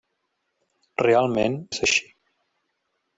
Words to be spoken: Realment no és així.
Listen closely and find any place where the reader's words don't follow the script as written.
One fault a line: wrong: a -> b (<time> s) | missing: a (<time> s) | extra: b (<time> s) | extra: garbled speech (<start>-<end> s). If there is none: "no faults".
missing: no (1.6 s)